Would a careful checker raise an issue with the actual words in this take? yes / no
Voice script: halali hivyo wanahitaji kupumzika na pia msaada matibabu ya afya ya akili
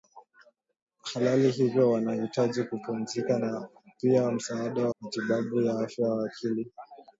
no